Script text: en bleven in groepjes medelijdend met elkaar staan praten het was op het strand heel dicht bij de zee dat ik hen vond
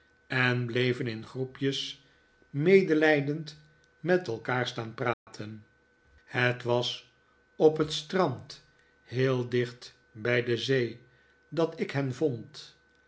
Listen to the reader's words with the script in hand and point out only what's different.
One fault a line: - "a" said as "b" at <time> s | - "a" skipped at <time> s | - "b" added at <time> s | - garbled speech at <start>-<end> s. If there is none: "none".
none